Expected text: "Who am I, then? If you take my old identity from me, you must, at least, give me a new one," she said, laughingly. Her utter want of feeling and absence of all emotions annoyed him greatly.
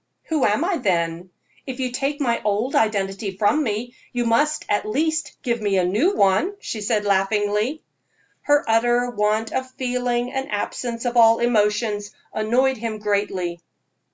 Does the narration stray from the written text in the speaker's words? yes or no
no